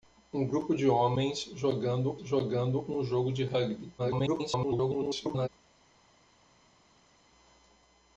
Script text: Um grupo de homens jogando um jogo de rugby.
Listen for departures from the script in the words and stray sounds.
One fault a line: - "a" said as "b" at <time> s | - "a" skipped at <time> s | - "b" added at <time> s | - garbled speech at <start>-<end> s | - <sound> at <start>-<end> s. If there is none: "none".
- "jogando" added at 2.2 s
- garbled speech at 4.0-5.5 s